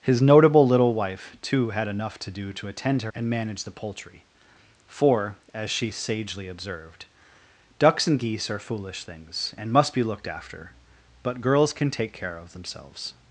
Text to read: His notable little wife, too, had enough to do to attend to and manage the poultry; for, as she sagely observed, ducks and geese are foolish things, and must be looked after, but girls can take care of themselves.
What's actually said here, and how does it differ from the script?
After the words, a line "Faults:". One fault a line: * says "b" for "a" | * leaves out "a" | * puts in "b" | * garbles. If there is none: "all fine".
His notable little wife, too, had enough to do to attend to and manage the poultry; for, as she sagely observed, ducks and geese are foolish things, and must be looked after, but girls can take care of themselves.
Faults:
all fine